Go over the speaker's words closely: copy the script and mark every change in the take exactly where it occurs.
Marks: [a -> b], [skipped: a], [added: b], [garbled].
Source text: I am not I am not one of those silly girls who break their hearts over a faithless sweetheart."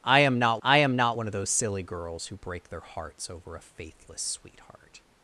I am not I am not one of those silly girls who break their hearts over a faithless sweetheart."